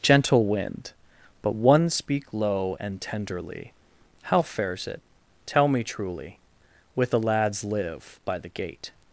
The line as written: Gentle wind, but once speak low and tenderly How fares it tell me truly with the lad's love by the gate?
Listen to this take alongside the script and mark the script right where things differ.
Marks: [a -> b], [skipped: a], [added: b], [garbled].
Gentle wind, but [once -> one] speak low and tenderly How fares it tell me truly with the lad's [love -> live] by the gate?